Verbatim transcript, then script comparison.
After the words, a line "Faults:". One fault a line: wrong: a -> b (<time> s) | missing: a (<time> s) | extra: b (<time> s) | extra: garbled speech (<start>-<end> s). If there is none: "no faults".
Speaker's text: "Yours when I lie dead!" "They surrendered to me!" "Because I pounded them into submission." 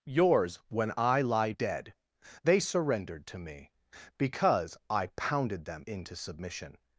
"Yours when I lie dead!" "They surrendered to me!" "Because I pounded them into submission."
Faults:
no faults